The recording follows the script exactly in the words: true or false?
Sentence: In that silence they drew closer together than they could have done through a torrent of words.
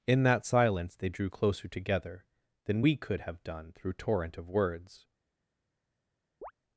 false